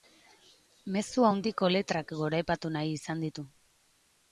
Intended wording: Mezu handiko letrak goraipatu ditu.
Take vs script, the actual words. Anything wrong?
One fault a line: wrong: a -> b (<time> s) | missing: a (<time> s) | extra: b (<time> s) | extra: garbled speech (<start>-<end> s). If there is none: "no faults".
extra: nahi izan (2.8 s)